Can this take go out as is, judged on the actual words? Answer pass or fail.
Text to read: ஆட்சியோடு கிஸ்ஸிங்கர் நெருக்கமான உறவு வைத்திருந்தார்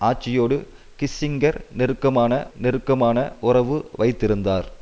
fail